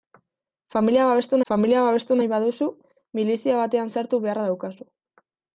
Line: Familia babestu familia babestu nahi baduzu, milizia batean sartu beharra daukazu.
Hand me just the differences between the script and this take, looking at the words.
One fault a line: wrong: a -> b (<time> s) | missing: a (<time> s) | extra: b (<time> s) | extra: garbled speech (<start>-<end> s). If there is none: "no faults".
no faults